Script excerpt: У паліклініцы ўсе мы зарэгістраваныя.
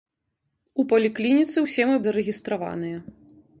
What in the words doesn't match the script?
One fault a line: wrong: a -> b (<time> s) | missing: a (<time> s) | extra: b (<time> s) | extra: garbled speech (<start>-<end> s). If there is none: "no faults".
no faults